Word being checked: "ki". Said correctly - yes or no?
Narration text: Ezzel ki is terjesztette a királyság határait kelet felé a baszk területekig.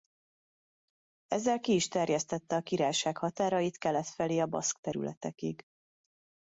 yes